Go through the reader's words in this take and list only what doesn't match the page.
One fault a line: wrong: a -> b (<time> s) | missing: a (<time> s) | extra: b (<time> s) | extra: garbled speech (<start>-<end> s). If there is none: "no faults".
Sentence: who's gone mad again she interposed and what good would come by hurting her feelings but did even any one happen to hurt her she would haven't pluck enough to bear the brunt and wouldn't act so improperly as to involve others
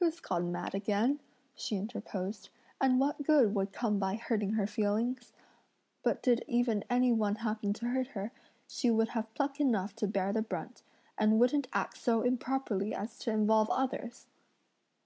wrong: haven't -> have (9.1 s)